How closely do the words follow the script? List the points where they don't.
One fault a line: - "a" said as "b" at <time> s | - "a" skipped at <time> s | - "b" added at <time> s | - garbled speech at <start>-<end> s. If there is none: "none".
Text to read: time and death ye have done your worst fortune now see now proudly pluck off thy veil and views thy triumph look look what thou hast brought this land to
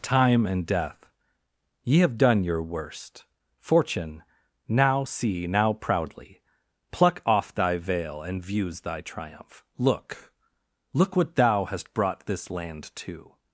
none